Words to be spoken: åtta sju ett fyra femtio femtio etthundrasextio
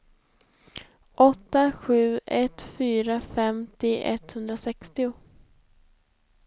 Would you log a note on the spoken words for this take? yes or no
yes